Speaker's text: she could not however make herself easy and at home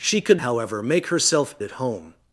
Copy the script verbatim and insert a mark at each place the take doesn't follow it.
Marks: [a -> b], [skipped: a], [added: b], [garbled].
she could [skipped: not] however make herself [skipped: easy and] at home